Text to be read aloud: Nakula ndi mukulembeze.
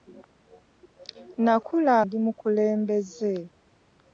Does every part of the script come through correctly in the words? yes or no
yes